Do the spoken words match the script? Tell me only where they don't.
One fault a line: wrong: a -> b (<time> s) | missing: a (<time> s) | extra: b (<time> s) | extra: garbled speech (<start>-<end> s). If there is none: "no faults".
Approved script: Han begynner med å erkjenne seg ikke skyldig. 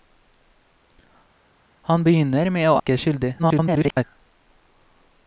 missing: erkjenne seg (2.8 s)
extra: garbled speech (3.4-4.0 s)